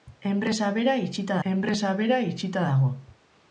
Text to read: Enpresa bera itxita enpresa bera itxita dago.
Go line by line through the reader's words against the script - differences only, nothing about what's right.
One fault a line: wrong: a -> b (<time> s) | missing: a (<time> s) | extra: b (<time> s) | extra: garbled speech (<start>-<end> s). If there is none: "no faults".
no faults